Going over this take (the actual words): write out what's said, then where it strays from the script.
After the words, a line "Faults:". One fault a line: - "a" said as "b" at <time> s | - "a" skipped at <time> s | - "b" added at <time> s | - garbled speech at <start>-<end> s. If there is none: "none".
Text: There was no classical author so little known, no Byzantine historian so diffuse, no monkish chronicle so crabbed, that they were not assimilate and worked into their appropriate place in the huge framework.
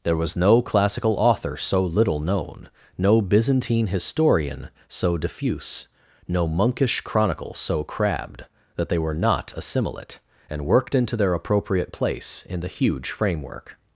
There was no classical author so little known, no Byzantine historian so diffuse, no monkish chronicle so crabbed, that they were not assimilate and worked into their appropriate place in the huge framework.
Faults:
none